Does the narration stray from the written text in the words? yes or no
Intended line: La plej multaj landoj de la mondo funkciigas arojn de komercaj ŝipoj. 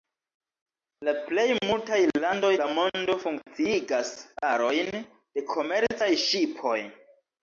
yes